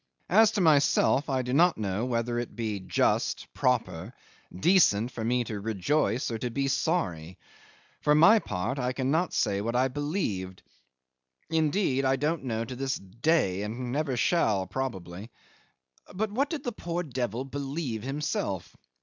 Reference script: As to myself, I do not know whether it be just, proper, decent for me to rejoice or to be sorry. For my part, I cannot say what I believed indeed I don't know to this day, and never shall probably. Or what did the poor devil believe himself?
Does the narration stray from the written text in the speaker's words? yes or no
yes